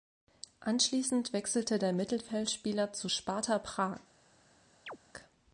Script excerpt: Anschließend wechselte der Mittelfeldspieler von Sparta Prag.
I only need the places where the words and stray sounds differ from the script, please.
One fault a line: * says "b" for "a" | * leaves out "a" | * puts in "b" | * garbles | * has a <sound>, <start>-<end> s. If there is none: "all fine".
* says "zu" for "von"
* has a chirp, 4.9-5.0 s